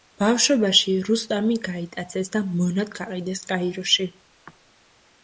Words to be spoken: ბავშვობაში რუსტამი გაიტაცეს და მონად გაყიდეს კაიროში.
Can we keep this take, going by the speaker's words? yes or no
yes